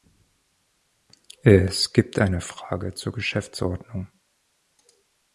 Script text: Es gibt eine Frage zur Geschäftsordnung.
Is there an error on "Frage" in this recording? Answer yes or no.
no